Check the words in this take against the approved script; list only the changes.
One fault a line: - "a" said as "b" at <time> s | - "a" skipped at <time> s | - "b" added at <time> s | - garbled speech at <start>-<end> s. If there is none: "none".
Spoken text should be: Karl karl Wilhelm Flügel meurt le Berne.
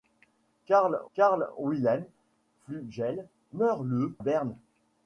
none